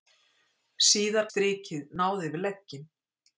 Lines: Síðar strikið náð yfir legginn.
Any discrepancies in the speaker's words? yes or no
no